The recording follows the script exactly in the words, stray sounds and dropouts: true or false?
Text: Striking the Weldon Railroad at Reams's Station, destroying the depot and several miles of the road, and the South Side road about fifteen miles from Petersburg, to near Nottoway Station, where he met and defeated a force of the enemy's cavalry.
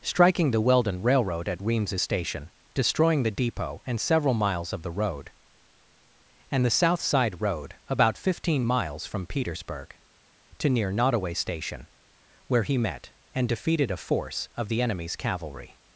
true